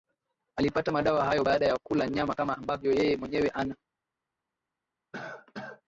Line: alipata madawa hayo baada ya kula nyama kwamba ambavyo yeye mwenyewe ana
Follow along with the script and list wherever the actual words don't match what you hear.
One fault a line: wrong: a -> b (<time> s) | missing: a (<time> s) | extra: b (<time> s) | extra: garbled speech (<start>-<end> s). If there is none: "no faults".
wrong: kwamba -> kama (2.3 s)